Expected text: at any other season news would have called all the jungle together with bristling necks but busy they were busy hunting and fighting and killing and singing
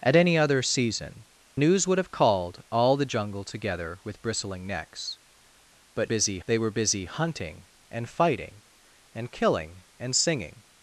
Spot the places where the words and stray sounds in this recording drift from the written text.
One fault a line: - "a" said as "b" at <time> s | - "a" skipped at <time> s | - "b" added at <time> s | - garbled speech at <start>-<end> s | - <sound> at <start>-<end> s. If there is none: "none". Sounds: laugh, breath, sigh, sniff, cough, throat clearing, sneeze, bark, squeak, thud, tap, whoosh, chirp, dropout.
none